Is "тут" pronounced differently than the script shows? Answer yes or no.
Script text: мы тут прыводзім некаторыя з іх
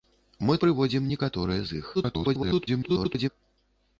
yes